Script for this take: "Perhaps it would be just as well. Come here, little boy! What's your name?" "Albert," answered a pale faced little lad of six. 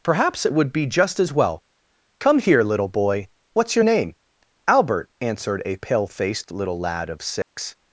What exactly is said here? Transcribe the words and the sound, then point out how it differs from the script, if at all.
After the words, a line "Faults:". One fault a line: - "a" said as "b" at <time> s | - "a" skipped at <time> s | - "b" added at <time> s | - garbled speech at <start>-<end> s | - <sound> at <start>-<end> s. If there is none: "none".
"Perhaps it would be just as well. Come here, little boy! What's your name?" "Albert," answered a pale faced little lad of six.
Faults:
- dropout at 7.4-7.6 s